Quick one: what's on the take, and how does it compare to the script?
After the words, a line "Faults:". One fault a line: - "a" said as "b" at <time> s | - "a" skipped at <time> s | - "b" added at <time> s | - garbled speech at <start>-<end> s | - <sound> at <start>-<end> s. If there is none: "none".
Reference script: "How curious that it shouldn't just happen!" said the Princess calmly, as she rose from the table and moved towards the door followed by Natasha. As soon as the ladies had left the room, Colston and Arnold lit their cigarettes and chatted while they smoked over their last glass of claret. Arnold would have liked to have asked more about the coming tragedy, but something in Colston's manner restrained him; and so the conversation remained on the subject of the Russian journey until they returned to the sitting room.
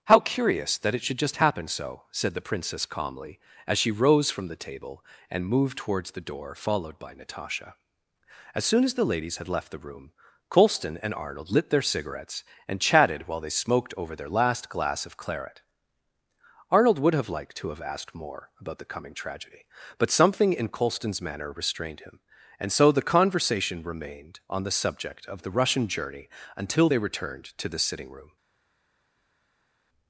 "How curious that it should just happen so!" said the Princess calmly, as she rose from the table and moved towards the door followed by Natasha. As soon as the ladies had left the room, Colston and Arnold lit their cigarettes and chatted while they smoked over their last glass of claret. Arnold would have liked to have asked more about the coming tragedy, but something in Colston's manner restrained him; and so the conversation remained on the subject of the Russian journey until they returned to the sitting room.
Faults:
- "shouldn't" said as "should" at 1.0 s
- "so" added at 1.7 s